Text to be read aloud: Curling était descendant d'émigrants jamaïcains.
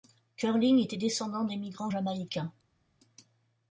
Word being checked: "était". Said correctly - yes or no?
yes